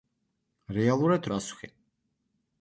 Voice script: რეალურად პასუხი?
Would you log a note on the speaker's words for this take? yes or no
no